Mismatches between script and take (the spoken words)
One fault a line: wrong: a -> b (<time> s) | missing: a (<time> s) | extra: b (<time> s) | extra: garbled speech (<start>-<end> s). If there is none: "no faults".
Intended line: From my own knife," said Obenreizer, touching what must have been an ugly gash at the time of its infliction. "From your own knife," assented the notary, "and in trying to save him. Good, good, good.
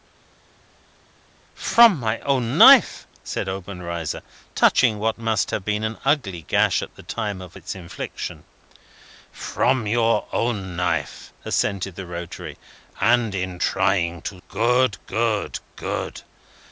missing: save him (14.4 s)